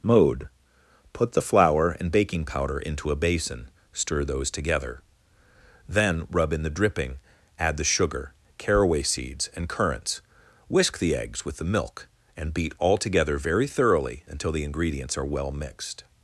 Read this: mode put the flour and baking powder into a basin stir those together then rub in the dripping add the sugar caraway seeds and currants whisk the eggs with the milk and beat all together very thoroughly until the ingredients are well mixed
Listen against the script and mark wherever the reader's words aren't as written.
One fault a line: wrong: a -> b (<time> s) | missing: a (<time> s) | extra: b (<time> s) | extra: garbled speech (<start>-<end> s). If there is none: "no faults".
no faults